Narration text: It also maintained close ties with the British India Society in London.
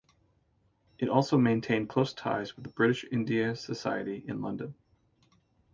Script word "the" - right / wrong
right